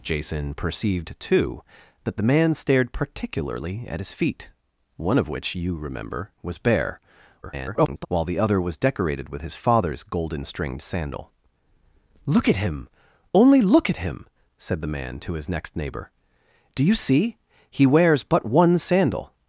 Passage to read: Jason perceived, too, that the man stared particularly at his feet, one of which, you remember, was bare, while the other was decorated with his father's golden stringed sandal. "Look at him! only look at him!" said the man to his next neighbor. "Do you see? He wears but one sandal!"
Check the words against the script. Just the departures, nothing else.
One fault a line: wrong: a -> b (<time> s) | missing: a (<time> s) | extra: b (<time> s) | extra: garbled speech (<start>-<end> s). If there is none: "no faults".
extra: garbled speech (7.4-8.1 s)